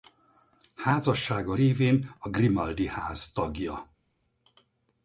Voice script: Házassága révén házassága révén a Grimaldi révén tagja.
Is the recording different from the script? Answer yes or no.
yes